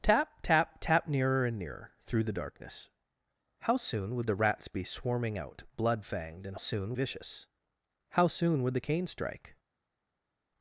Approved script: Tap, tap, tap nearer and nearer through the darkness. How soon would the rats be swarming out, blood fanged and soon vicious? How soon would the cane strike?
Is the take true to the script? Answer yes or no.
yes